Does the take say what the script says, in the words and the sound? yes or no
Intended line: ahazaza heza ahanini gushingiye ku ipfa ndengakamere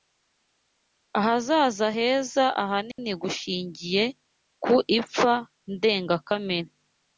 no